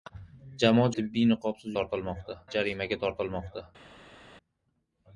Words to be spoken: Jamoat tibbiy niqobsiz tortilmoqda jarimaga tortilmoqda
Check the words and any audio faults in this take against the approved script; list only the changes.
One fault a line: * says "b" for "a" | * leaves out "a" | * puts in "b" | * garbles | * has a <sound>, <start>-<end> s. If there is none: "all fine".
all fine